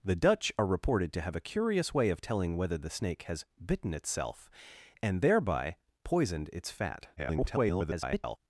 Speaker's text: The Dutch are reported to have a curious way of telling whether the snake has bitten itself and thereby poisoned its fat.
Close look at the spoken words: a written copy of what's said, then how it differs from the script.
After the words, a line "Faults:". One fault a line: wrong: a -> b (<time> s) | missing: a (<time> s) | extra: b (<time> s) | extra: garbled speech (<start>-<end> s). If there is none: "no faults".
The Dutch are reported to have a curious way of telling whether the snake has bitten itself and thereby poisoned its fat. [garbled]
Faults:
extra: garbled speech (7.2-8.4 s)